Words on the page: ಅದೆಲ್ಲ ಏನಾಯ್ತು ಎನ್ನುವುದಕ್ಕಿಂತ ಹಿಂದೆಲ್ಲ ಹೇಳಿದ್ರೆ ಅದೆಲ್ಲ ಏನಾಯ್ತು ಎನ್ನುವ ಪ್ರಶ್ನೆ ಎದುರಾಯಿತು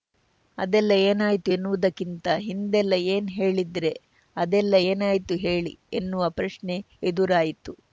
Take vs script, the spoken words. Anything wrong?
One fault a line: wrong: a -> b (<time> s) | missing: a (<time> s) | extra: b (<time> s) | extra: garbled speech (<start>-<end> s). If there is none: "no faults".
extra: ಏನ್ (3.1 s)
extra: ಹೇಳಿ (5.4 s)